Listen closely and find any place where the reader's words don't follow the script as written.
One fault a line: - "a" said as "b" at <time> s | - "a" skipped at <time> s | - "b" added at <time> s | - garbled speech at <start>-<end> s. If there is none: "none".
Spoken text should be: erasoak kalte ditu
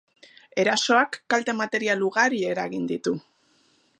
- "material ugari eragin" added at 1.6 s